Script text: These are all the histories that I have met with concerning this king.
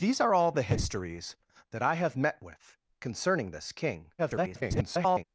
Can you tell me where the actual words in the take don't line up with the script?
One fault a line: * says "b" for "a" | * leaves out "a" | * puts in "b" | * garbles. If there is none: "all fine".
* garbles